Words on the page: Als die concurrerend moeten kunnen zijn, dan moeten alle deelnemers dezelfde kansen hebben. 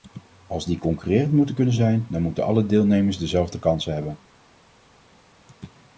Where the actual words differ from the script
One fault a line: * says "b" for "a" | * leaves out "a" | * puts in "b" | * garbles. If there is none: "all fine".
all fine